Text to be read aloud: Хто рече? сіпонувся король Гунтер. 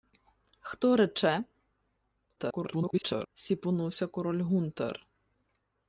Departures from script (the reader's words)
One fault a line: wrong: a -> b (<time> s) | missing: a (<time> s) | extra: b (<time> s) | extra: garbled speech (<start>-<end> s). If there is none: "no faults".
extra: garbled speech (2.4-3.3 s)